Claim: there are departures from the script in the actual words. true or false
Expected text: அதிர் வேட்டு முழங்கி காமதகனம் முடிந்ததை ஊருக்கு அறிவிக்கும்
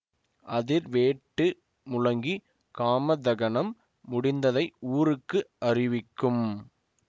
false